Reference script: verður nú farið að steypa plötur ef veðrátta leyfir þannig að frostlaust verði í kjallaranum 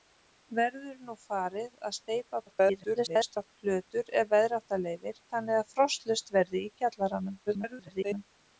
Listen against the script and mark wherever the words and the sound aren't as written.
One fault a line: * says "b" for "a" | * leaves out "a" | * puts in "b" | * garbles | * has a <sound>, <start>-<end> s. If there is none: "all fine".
* garbles
* garbles